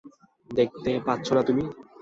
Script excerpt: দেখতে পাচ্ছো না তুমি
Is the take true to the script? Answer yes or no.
yes